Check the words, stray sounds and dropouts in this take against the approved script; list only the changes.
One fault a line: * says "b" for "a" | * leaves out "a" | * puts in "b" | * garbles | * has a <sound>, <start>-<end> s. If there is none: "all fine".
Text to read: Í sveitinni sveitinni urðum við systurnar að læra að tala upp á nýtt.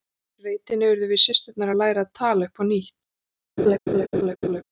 * leaves out "sveitinni"
* has a laugh, 3.6-4.6 s